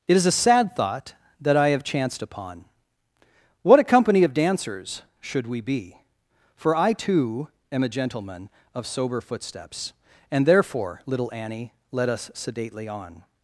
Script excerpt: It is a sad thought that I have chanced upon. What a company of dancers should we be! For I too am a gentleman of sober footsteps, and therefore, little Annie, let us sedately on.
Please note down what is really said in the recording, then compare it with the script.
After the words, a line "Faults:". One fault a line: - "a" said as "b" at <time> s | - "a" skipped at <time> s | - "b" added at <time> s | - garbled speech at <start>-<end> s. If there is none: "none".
It is a sad thought that I have chanced upon. What a company of dancers should we be! For I too am a gentleman of sober footsteps, and therefore, little Annie, let us sedately on.
Faults:
none